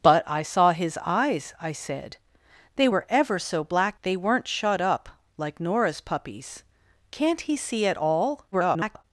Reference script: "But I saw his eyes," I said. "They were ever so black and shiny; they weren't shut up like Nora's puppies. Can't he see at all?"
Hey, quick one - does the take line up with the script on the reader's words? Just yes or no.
no